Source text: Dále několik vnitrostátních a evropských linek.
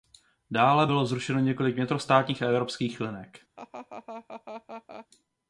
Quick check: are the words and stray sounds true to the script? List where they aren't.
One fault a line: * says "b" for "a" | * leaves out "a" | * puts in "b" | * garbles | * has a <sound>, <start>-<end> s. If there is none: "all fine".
* puts in "bylo zrušeno"
* has a laugh, 3.6-5.1 s